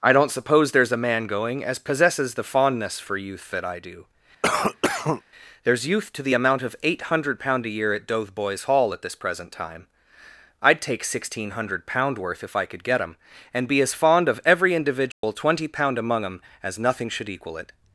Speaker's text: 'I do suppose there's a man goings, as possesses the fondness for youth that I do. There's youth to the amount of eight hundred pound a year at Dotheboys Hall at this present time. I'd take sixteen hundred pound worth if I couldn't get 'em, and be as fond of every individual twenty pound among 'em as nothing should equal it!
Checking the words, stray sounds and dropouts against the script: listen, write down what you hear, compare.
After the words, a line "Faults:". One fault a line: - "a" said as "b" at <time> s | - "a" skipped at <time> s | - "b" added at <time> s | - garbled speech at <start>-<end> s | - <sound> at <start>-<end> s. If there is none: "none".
'I don't suppose there's a man going, as possesses the fondness for youth that I do. There's youth to the amount of eight hundred pound a year at Dotheboys Hall at this present time. I'd take sixteen hundred pound worth if I could get 'em, and be as fond of every individual twenty pound among 'em as nothing should equal it!
Faults:
- "do" said as "don't" at 0.1 s
- "goings" said as "going" at 1.3 s
- cough at 4.4-5.2 s
- "couldn't" said as "could" at 12.6 s
- dropout at 15.1-15.2 s